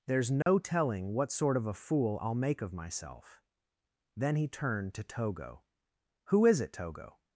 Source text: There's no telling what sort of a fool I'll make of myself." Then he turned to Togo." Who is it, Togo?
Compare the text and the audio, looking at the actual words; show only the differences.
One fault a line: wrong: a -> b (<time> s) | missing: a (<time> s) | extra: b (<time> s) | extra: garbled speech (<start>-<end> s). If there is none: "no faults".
no faults